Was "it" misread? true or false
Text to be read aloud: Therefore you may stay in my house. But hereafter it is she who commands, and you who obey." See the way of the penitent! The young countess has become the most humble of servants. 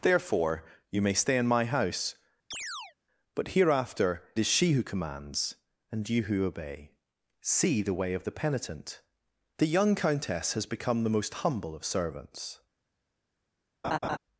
true